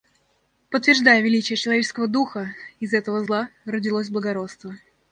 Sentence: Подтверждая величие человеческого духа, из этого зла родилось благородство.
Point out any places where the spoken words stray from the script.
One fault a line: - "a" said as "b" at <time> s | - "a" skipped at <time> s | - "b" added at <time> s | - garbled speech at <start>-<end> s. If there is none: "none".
none